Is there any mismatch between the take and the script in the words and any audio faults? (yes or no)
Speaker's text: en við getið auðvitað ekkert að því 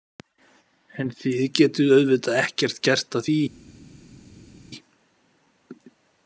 yes